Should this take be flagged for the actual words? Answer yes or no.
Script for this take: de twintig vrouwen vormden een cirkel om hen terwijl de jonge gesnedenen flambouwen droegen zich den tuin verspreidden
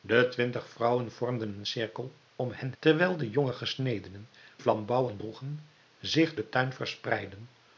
no